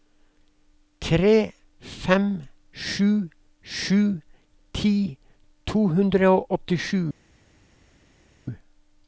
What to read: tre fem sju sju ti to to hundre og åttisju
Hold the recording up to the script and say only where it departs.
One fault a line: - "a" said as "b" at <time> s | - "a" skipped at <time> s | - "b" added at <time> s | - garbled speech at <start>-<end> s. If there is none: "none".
- "to" skipped at 5.8 s